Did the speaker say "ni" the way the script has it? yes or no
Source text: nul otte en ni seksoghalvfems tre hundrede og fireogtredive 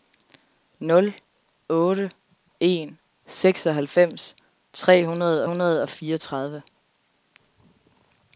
no